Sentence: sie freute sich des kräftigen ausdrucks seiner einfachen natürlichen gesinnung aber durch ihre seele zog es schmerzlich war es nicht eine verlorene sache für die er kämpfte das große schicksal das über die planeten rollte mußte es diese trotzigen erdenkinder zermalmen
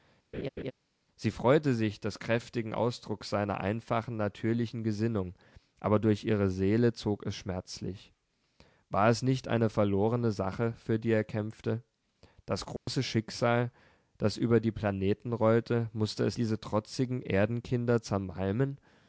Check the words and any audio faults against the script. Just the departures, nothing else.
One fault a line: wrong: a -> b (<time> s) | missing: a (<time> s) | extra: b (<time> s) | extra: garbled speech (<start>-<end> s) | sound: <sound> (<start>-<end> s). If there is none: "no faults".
sound: laugh (0.3-0.7 s)
sound: dropout (12.8-12.9 s)